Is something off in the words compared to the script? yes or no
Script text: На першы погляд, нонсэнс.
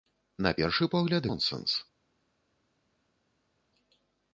no